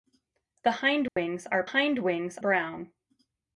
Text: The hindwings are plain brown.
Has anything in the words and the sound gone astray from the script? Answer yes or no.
yes